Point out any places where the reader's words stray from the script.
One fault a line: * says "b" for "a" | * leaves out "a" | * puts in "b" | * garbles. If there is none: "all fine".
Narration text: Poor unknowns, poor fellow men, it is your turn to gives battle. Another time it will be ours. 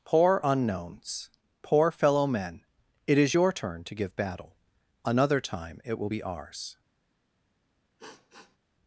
* says "give" for "gives"